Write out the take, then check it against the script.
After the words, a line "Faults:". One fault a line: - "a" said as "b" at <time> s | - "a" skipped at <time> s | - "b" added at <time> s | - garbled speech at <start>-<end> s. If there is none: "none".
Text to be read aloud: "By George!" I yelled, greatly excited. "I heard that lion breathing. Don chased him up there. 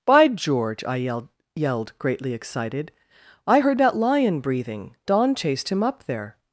"By George!" I yelled yelled, greatly excited. "I heard that lion breathing. Don chased him up there.
Faults:
- "yelled" added at 1.6 s